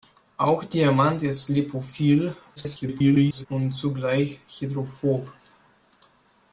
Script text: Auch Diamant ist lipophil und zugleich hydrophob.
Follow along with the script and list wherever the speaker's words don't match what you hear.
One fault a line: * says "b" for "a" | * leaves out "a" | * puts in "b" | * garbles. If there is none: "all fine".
* garbles